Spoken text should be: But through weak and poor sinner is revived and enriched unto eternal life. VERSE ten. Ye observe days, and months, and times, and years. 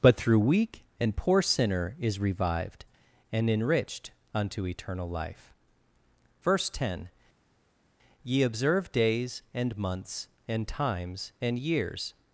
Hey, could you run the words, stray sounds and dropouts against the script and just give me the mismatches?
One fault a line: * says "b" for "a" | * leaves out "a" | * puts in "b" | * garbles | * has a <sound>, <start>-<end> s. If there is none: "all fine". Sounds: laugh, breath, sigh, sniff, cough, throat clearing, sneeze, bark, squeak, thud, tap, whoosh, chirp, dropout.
all fine